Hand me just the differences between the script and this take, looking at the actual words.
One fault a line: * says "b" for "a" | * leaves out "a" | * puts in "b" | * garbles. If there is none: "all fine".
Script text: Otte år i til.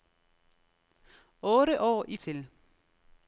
all fine